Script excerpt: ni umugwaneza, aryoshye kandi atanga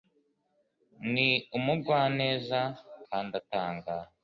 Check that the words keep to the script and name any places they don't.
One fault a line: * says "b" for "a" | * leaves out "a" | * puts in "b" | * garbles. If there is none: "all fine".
* leaves out "aryoshye"